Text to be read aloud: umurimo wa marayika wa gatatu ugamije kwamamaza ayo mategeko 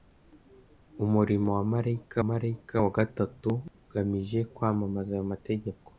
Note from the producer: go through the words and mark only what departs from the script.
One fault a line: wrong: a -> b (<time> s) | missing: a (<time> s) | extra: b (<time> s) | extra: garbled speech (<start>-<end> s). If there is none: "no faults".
extra: marayika (2.3 s)